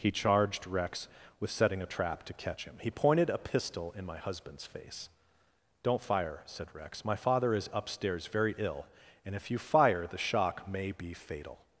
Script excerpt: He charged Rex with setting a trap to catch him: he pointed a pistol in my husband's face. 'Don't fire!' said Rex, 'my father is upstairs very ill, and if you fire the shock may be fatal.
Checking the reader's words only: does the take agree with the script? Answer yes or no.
yes